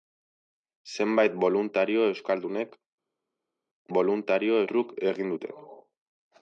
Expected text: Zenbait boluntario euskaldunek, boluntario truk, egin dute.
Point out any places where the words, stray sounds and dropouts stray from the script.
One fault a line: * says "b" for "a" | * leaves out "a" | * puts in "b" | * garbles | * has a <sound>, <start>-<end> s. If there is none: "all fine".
all fine